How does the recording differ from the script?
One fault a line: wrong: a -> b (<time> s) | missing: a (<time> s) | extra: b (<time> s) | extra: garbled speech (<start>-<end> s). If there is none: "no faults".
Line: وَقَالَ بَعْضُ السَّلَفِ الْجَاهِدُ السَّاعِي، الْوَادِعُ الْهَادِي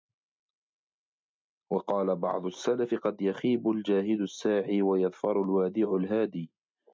extra: قَدْ يَخِيبُ (2.9 s)
extra: وَيَظْفَرُ (4.8 s)